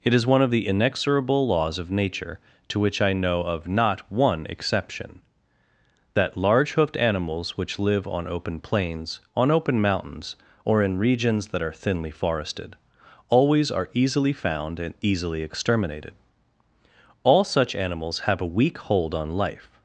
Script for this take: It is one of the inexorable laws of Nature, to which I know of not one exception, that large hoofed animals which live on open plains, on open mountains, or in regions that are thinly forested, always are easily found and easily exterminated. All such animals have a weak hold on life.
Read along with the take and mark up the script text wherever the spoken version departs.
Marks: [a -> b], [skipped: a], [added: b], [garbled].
It is one of the inexorable laws of Nature, to which I know of not one exception, that large hoofed animals which live on open plains, on open mountains, or in regions that are thinly forested, always are easily found and easily exterminated. All such animals have a weak hold on life.